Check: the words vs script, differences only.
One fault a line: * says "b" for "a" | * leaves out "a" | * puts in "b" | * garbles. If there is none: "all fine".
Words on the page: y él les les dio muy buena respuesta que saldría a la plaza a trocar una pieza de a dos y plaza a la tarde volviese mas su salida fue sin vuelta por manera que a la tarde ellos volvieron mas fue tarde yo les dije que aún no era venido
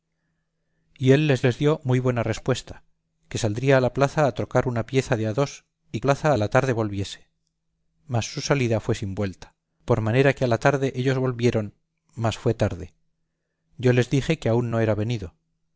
all fine